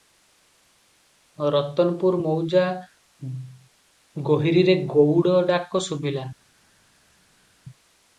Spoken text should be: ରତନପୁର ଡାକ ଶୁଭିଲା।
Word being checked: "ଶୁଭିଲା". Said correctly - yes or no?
yes